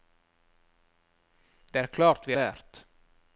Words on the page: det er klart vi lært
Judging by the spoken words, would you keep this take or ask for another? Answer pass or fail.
pass